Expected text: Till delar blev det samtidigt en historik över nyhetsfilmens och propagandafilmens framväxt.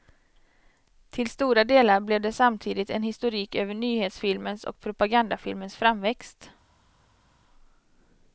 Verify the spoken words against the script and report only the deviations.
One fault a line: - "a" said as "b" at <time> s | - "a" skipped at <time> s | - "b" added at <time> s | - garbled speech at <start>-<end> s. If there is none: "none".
- "stora" added at 1.3 s